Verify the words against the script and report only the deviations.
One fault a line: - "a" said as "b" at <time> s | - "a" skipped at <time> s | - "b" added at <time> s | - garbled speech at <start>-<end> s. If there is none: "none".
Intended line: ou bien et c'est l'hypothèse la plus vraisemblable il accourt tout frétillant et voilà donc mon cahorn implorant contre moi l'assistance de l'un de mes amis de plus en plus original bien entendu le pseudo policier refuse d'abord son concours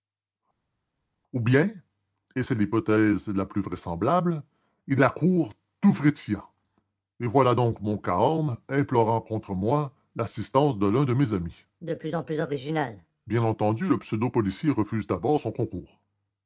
none